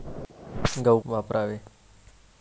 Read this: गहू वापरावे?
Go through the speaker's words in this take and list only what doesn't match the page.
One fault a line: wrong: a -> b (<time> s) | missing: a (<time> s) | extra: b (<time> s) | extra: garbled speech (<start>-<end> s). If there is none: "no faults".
no faults